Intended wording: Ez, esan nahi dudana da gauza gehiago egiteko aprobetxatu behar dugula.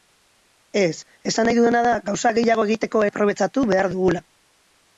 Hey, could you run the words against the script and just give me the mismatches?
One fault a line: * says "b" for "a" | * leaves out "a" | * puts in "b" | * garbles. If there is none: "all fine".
all fine